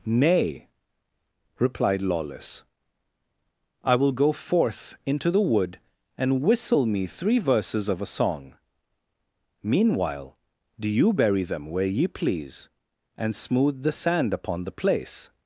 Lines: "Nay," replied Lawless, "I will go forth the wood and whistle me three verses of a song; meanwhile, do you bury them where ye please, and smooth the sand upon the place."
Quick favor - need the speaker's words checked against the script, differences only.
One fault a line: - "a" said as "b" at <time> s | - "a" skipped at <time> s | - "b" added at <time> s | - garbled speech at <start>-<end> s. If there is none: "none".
- "into" added at 5.0 s